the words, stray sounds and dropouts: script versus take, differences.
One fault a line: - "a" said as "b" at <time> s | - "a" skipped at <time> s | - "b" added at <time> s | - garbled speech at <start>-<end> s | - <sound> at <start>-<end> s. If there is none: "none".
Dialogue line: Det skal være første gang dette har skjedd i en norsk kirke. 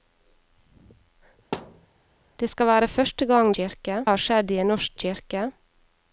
- thud at 1.5-1.9 s
- "dette" said as "kirke" at 3.6 s